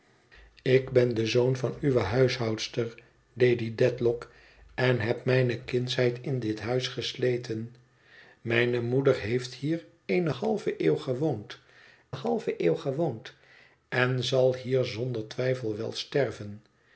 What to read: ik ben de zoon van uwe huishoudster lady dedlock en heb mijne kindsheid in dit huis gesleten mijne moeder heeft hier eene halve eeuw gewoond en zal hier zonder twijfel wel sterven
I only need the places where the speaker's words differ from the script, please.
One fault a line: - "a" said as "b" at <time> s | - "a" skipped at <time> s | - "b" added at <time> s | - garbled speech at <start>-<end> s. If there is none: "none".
- "halve eeuw gewoond" added at 12.1 s